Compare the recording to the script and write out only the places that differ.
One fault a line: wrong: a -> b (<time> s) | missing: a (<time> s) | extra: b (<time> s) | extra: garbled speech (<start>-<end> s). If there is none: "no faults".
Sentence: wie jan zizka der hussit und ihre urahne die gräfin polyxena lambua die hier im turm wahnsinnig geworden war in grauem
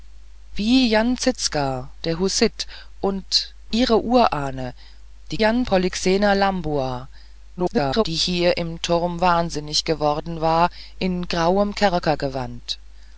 wrong: gräfin -> jan (5.4 s)
extra: garbled speech (7.6-8.0 s)